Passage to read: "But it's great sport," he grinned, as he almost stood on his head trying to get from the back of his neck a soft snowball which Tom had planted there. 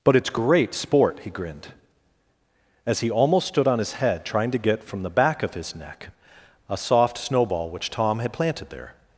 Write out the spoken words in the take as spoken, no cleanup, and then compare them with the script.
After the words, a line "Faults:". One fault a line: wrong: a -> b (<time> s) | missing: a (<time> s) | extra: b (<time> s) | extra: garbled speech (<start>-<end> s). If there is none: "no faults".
"But it's great sport," he grinned, as he almost stood on his head trying to get from the back of his neck a soft snowball which Tom had planted there.
Faults:
no faults